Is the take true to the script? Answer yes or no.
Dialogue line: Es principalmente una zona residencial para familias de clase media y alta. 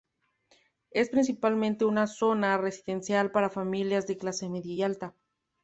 yes